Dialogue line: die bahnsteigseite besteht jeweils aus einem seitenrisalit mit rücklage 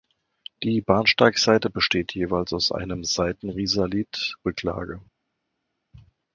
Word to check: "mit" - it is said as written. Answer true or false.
false